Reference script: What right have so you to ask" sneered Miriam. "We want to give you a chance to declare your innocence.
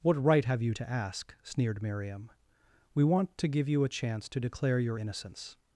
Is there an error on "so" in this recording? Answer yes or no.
yes